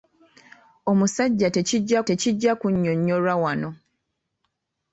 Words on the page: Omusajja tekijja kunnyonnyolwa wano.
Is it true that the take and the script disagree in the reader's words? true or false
true